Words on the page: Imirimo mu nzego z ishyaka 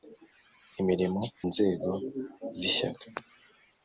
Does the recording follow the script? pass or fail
fail